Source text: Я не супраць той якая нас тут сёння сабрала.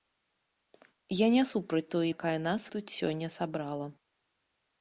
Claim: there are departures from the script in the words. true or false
false